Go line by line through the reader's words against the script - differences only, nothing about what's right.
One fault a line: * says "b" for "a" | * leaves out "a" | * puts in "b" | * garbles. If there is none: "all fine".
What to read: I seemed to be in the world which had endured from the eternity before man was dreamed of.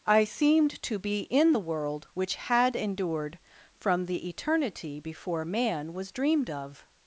all fine